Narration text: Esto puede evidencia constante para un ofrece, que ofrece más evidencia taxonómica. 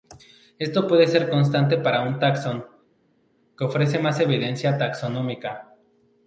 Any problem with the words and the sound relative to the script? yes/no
yes